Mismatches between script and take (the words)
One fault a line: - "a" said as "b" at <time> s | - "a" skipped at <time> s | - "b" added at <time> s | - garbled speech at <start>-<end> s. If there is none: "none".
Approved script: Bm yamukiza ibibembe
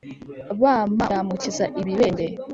none